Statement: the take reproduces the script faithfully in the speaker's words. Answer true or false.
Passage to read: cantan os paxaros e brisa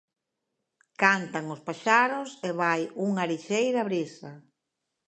false